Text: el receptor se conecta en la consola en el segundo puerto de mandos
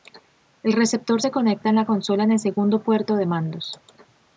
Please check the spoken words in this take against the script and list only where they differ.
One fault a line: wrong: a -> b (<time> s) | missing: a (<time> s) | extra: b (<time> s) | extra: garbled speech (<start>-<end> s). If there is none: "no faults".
no faults